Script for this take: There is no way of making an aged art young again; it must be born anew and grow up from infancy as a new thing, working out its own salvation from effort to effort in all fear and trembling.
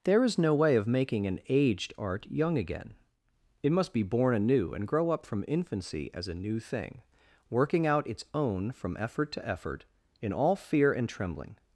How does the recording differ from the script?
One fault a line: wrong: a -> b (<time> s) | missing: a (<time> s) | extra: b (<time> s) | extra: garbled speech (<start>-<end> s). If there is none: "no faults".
missing: salvation (8.7 s)